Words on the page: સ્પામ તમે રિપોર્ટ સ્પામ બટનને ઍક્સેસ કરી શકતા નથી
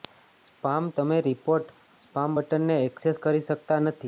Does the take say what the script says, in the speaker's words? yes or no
yes